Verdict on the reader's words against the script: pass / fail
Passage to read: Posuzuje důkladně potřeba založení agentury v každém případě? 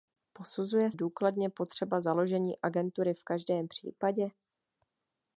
pass